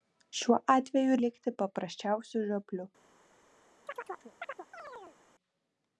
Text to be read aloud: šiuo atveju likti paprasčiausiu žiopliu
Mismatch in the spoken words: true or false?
false